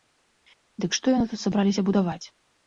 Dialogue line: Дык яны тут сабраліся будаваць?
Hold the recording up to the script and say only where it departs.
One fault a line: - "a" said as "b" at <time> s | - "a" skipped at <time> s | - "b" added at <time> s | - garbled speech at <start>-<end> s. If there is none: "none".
- "што" added at 1.0 s